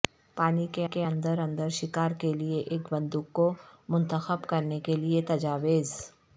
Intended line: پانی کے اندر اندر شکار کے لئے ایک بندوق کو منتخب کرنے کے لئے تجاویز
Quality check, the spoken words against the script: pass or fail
fail